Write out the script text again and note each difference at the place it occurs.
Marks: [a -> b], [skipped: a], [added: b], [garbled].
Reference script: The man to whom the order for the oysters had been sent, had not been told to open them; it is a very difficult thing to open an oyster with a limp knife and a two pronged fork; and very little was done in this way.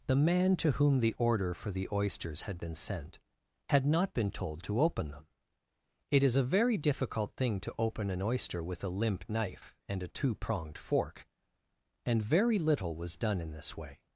The man to whom the order for the oysters had been sent, had not been told to open them; it is a very difficult thing to open an oyster with a limp knife and a two pronged fork; and very little was done in this way.